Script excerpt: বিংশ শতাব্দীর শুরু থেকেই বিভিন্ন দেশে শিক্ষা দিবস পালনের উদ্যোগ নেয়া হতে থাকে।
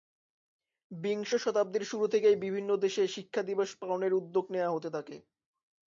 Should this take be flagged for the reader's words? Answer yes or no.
no